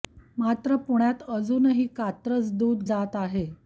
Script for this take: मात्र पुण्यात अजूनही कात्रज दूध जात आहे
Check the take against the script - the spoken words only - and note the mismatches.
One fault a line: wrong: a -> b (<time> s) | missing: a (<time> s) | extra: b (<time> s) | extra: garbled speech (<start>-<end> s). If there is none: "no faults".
no faults